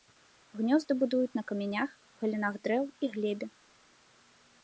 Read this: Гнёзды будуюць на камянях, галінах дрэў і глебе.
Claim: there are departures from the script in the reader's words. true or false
false